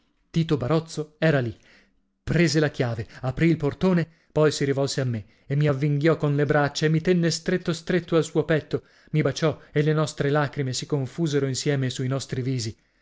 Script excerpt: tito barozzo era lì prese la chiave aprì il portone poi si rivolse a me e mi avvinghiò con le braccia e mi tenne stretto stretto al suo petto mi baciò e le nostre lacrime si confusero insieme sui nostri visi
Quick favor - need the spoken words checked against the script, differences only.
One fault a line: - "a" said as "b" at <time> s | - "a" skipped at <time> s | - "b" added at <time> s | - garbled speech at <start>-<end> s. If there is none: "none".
none